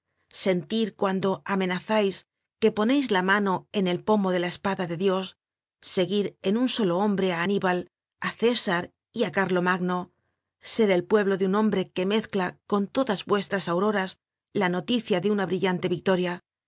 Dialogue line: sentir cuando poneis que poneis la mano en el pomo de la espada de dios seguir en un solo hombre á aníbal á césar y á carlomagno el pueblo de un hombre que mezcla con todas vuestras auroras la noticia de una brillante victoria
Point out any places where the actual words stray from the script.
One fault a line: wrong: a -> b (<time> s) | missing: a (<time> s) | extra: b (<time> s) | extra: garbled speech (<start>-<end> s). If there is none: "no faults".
wrong: poneis -> amenazais (1.5 s)
extra: ser (10.7 s)